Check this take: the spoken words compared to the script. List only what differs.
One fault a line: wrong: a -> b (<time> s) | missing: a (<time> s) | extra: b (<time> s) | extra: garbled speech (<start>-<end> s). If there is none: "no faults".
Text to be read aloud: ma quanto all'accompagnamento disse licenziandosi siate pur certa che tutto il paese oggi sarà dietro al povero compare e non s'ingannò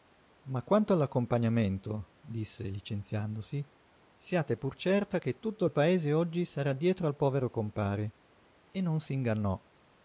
no faults